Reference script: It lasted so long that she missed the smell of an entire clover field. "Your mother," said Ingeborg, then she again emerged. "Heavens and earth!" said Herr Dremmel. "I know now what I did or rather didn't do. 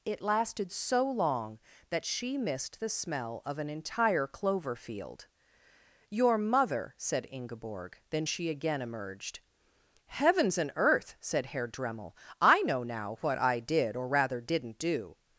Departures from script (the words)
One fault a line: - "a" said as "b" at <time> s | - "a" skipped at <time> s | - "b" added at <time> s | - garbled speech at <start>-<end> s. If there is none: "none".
none